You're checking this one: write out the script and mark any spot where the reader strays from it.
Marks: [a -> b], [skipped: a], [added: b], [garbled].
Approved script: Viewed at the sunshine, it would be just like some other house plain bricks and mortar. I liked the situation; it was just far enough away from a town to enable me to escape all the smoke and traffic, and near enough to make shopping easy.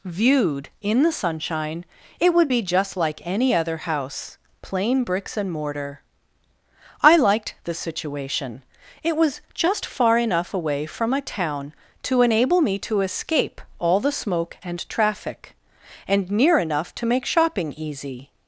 Viewed [at -> in] the sunshine, it would be just like [some -> any] other house plain bricks and mortar. I liked the situation; it was just far enough away from a town to enable me to escape all the smoke and traffic, and near enough to make shopping easy.